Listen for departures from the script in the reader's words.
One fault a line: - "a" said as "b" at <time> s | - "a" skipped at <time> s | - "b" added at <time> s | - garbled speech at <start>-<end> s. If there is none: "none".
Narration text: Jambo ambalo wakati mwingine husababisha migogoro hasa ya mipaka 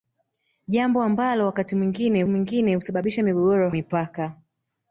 - "mwingine" added at 2.3 s
- "hasa ya" skipped at 3.7 s